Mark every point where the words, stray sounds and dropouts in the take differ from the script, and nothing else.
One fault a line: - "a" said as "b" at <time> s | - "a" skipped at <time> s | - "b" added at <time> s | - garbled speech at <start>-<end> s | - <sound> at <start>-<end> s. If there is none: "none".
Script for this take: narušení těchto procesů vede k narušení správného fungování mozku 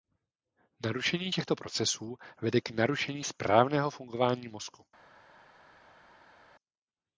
none